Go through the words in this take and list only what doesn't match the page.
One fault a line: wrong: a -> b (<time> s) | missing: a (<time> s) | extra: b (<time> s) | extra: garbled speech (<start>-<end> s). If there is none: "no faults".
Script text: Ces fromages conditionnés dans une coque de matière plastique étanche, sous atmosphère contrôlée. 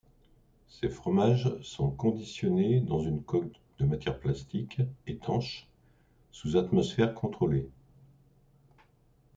extra: sont (1.6 s)